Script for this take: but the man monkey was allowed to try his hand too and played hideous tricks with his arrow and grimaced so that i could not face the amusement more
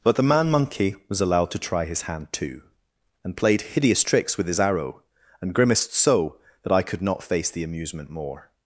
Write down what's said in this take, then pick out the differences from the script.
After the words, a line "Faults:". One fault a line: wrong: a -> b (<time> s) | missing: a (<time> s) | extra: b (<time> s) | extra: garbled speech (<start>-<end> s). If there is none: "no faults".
but the man monkey was allowed to try his hand too and played hideous tricks with his arrow and grimaced so that i could not face the amusement more
Faults:
no faults